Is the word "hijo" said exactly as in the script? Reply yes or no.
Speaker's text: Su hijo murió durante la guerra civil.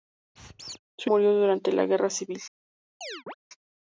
no